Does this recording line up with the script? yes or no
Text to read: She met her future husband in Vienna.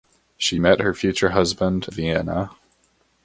no